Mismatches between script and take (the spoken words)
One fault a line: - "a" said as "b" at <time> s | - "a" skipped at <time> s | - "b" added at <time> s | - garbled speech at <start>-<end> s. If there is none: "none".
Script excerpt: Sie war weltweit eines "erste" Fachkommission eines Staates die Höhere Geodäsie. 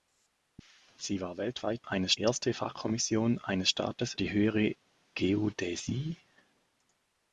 none